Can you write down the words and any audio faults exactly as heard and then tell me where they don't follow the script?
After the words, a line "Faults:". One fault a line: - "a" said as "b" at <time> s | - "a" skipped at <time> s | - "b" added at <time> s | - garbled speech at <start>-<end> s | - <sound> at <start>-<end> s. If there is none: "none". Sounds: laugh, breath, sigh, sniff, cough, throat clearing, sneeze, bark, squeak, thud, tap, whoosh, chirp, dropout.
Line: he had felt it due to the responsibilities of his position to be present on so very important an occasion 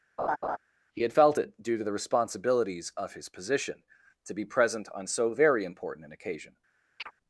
he had felt it due to the responsibilities of his position to be present on so very important an occasion
Faults:
- laugh at 0.2-0.6 s
- chirp at 7.0-7.1 s